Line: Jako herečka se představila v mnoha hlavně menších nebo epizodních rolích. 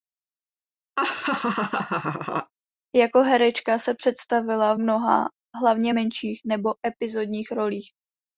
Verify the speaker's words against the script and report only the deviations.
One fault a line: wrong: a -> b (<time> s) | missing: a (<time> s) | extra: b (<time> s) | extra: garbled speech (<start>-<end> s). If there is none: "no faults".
no faults